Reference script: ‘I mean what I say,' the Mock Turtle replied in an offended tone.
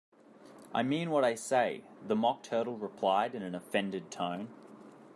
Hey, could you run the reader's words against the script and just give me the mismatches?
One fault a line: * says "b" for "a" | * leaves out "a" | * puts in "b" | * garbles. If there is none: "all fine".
all fine